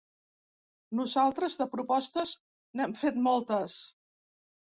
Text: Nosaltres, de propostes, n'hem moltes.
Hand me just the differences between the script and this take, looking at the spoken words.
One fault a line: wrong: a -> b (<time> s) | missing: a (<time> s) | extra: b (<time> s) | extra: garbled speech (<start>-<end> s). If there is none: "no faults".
extra: fet (3.0 s)